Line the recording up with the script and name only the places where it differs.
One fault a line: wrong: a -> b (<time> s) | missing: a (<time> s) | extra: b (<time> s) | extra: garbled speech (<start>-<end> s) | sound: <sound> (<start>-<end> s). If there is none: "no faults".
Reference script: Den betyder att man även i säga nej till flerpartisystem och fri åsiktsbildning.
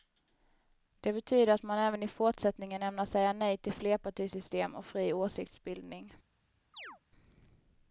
wrong: Den -> Det (1.0 s)
extra: fortsättningen ämnar (2.1 s)
sound: chirp (6.7-7.0 s)